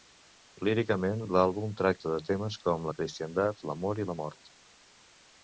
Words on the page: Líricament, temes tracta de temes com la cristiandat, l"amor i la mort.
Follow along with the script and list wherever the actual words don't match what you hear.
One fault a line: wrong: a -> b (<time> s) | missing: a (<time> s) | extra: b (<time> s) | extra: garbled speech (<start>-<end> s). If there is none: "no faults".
wrong: temes -> l"àlbum (1.2 s)